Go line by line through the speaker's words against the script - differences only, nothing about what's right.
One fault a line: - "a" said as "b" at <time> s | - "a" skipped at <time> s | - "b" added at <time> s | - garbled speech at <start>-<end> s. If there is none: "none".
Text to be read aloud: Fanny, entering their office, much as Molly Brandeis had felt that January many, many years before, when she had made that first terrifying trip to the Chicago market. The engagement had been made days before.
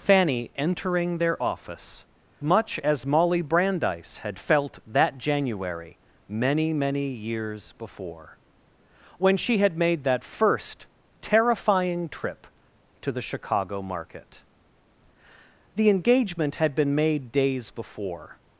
none